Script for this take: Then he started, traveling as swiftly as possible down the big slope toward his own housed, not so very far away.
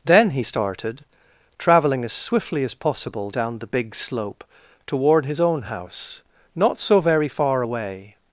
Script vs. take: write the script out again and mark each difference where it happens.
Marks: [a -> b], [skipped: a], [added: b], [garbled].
Then he started, traveling as swiftly as possible down the big slope toward his own [housed, -> house] not so very far away.